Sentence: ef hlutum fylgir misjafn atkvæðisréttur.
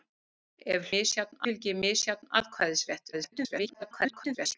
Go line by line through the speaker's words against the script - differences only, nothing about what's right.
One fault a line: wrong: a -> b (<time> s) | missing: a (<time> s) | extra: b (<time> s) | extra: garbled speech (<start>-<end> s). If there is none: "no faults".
wrong: hlutum -> misjafn (0.9 s)
extra: garbled speech (3.1-4.6 s)